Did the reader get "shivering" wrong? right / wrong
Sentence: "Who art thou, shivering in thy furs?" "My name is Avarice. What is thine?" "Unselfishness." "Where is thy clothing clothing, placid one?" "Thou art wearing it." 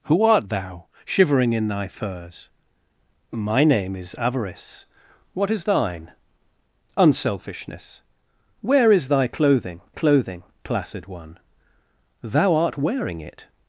right